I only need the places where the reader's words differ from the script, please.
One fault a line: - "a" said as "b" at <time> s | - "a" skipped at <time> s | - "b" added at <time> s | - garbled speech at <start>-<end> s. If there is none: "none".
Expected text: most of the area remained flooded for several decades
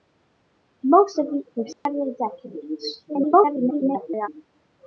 - "area remained flooded" skipped at 1.4 s
- garbled speech at 3.1-4.3 s